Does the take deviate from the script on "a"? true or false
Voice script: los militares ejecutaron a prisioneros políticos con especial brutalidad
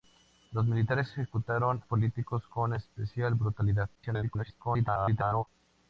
true